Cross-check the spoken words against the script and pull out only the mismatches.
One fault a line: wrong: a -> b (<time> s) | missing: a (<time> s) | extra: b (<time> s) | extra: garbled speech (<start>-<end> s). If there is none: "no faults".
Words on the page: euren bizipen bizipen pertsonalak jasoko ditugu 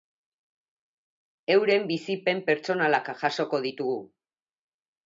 missing: bizipen (2.4 s)